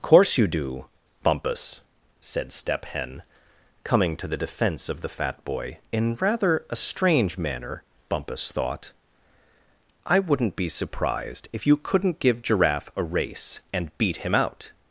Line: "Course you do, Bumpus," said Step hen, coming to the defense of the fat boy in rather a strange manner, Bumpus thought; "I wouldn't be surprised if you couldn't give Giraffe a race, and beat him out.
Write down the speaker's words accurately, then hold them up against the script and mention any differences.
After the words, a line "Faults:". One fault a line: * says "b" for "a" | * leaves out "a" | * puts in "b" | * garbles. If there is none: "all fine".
"Course you do, Bumpus," said Step hen, coming to the defense of the fat boy in rather a strange manner, Bumpus thought; "I wouldn't be surprised if you couldn't give Giraffe a race, and beat him out.
Faults:
all fine